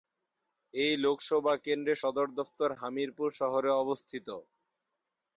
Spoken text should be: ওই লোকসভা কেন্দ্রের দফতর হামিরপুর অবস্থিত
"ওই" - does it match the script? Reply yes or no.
no